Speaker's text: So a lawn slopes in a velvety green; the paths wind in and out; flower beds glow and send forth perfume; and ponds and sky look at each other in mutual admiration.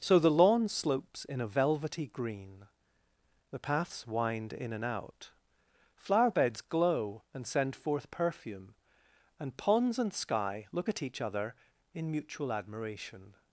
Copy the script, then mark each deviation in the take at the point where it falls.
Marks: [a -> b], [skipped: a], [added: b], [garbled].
So [a -> the] lawn slopes in a velvety green; the paths wind in and out; flower beds glow and send forth perfume; and ponds and sky look at each other in mutual admiration.